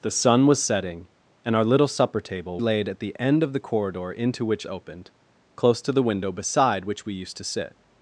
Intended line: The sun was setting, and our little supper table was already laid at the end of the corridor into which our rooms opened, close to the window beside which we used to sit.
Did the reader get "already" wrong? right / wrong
wrong